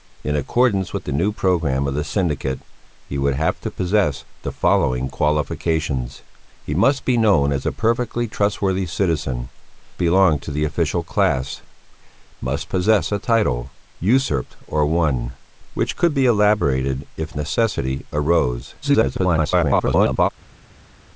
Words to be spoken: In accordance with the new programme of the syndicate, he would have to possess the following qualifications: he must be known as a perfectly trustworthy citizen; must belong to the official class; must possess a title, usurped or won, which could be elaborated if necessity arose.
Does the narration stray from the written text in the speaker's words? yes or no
yes